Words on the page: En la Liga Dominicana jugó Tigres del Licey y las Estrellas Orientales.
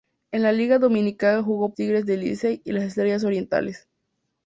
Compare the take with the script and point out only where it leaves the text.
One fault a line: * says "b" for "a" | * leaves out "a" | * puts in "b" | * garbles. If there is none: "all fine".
all fine